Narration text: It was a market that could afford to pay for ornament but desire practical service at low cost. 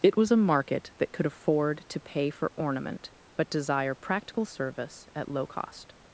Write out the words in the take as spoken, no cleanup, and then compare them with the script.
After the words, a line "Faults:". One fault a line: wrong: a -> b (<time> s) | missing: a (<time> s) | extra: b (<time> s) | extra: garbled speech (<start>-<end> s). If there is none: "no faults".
It was a market that could afford to pay for ornament but desire practical service at low cost.
Faults:
no faults